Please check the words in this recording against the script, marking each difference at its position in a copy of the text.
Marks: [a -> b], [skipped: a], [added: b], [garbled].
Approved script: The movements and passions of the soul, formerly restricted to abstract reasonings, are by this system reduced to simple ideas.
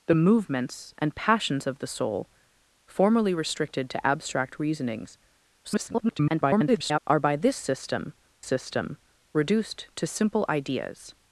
The movements and passions of the soul, formerly restricted to abstract reasonings, [garbled] are by this system [added: system] reduced to simple ideas.